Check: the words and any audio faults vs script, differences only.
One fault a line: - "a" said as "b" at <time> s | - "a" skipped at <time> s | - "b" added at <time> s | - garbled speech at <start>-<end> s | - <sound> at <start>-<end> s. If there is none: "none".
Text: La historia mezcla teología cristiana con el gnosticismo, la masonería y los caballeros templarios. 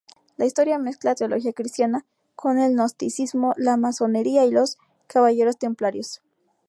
none